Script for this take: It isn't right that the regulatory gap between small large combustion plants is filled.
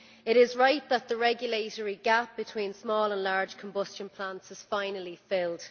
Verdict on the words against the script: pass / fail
fail